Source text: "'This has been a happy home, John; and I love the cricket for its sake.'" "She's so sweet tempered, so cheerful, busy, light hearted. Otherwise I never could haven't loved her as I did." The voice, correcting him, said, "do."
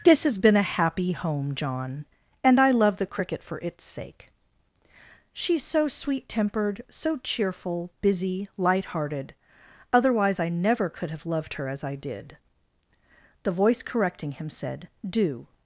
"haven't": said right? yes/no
no